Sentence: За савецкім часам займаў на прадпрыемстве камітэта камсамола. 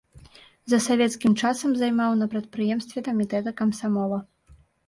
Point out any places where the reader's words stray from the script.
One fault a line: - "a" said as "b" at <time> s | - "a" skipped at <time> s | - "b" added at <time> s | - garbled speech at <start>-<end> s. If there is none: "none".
none